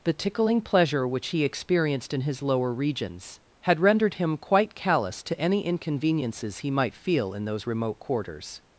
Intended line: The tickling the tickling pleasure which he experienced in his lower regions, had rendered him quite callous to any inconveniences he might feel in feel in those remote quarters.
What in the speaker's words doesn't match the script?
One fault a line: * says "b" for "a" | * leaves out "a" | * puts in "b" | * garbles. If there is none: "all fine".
* leaves out "the tickling"
* leaves out "feel in"